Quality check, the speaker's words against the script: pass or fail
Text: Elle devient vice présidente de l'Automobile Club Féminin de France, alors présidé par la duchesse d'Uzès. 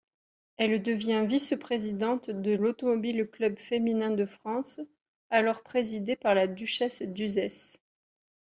pass